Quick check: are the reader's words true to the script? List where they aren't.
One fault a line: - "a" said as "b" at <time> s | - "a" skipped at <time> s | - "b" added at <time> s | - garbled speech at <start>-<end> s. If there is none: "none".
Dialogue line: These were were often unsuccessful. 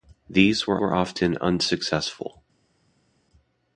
none